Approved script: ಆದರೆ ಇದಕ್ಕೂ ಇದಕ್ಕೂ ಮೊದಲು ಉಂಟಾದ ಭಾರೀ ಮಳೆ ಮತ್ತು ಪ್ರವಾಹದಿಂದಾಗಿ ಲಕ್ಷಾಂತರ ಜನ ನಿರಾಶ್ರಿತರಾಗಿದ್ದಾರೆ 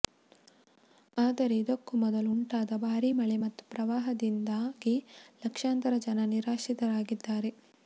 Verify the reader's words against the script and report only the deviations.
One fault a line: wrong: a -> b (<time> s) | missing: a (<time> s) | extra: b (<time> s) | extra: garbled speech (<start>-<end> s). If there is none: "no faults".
missing: ಇದಕ್ಕೂ (1.9 s)